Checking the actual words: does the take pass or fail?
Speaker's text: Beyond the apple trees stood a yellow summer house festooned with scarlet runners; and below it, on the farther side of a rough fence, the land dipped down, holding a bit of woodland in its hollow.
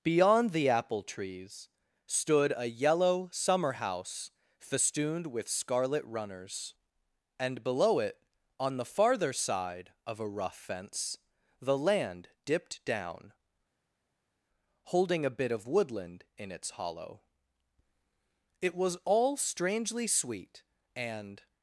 fail